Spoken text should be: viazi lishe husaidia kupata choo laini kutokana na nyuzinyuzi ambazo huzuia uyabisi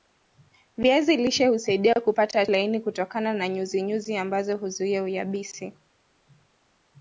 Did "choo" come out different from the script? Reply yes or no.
yes